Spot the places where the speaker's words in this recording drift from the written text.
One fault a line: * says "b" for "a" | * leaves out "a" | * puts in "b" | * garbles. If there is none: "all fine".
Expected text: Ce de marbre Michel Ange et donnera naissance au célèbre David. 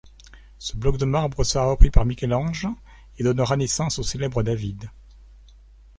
* puts in "bloc"
* puts in "sera repris par"